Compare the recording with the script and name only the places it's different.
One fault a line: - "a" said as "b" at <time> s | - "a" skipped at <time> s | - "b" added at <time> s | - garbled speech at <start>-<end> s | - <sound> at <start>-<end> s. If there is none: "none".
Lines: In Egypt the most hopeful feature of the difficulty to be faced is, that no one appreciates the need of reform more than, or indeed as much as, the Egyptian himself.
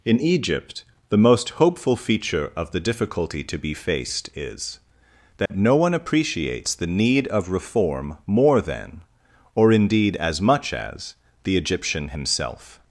- dropout at 5.5-5.5 s